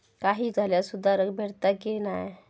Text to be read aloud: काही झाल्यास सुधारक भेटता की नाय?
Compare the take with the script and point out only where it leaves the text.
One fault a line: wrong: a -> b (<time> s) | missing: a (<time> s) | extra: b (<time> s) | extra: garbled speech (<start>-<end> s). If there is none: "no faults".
no faults